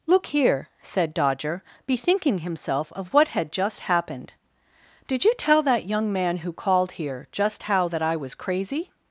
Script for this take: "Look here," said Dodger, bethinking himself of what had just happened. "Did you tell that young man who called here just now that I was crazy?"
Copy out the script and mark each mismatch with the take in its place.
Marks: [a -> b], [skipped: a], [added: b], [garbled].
"Look here," said Dodger, bethinking himself of what had just happened. "Did you tell that young man who called here just [now -> how] that I was crazy?"